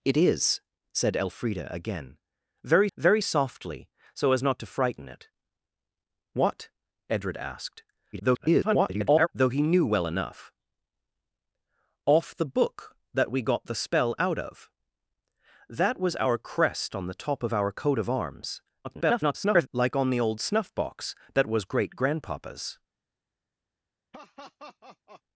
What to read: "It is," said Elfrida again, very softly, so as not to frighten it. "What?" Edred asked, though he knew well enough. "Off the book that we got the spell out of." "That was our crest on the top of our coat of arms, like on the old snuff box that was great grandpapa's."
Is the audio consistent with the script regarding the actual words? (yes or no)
no